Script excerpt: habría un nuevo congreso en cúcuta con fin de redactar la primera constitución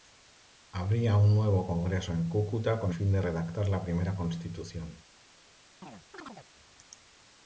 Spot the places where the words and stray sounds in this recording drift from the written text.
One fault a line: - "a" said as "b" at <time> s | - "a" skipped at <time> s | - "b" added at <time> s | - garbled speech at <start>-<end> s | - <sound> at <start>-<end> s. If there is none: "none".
- chirp at 5.8-6.5 s